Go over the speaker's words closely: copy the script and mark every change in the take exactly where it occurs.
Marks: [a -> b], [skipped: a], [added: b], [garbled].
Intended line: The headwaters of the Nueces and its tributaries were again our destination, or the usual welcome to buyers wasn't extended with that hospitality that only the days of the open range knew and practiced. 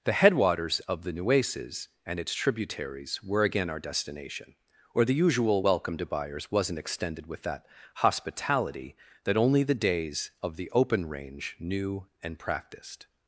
The headwaters of the Nueces and its tributaries were again our destination, or the usual welcome to buyers wasn't extended with that hospitality that only the days of the open range knew and practiced.